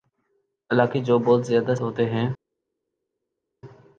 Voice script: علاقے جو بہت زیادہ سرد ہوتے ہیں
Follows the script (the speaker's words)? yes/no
no